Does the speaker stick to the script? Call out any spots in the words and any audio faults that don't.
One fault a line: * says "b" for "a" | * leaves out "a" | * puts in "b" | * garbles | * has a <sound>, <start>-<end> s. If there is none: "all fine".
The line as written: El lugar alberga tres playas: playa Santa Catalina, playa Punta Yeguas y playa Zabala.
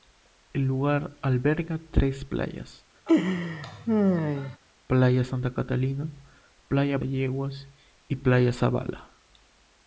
* has a laugh, 3.1-4.6 s
* leaves out "Punta"